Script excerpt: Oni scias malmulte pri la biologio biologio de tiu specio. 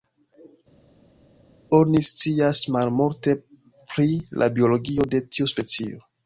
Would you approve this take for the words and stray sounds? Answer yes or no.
no